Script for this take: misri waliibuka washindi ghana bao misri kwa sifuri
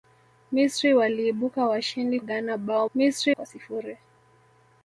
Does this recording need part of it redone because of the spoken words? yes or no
no